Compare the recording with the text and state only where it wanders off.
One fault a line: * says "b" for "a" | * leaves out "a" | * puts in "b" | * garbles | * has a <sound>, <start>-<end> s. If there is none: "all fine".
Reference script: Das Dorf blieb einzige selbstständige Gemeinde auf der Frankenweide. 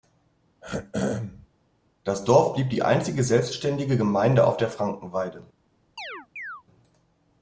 * has a throat clearing, 0.6-1.5 s
* puts in "die"
* has a chirp, 6.0-6.6 s